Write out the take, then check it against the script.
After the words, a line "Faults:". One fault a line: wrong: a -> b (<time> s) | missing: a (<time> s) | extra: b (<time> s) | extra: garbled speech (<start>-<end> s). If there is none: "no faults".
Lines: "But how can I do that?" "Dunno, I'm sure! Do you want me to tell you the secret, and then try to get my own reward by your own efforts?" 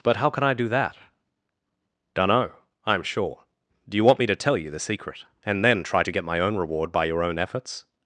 "But how can I do that?" "Dunno, I'm sure! Do you want me to tell you the secret, and then try to get my own reward by your own efforts?"
Faults:
no faults